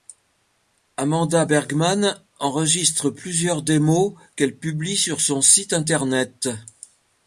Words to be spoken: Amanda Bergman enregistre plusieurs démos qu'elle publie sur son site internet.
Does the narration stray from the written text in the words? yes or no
no